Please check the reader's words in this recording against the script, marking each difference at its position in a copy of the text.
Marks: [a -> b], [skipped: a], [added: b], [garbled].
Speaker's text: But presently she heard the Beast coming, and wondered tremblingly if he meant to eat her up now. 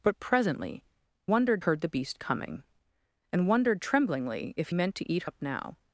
But presently [she -> wondered] heard the Beast coming, and wondered tremblingly if [skipped: he] meant to eat [skipped: her] up now.